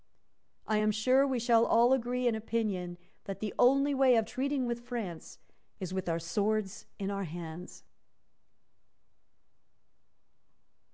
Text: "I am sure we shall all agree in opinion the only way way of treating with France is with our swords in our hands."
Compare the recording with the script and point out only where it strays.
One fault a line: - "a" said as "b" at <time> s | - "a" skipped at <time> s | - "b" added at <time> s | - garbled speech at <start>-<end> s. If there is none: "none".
- "that" added at 3.3 s
- "way" skipped at 4.2 s